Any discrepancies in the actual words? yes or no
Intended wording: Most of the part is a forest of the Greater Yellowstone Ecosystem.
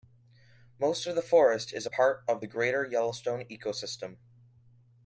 yes